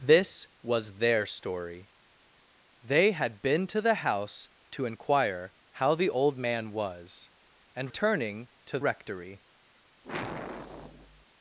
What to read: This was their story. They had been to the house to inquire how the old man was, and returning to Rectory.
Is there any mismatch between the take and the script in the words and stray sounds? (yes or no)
yes